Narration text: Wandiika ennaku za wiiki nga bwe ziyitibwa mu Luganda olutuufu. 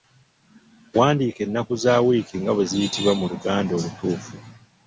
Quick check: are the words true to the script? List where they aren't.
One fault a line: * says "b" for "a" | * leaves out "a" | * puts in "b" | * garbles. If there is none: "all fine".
all fine